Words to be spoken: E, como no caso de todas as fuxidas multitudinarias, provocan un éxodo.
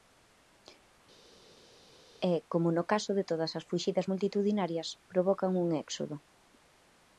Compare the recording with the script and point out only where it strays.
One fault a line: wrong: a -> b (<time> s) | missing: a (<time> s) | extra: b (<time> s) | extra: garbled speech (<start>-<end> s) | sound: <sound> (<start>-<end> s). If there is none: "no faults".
no faults